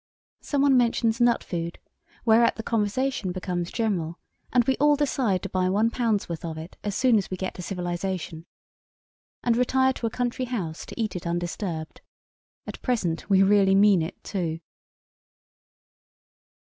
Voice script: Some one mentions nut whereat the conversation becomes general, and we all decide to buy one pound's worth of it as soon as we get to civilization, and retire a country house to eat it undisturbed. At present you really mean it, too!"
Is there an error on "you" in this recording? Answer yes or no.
yes